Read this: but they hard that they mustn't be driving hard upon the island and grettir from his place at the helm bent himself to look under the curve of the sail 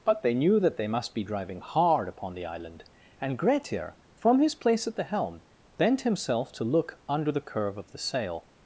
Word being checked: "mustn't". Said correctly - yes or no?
no